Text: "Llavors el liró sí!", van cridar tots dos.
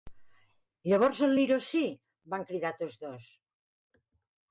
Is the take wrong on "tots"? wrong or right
right